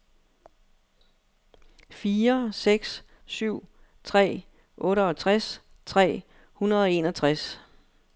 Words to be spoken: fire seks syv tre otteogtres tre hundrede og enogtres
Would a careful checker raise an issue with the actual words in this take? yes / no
no